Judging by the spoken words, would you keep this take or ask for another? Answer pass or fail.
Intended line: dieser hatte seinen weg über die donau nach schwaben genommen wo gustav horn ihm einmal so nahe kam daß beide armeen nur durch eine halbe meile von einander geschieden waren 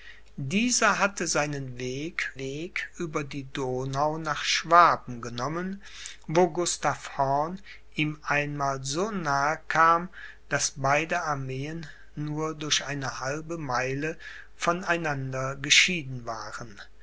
fail